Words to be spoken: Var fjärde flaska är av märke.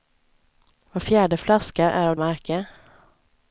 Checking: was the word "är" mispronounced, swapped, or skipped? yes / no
no